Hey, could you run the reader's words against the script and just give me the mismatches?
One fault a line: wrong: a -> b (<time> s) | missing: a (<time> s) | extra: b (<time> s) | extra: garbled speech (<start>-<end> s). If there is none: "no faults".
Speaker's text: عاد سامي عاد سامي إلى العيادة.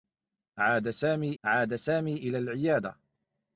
no faults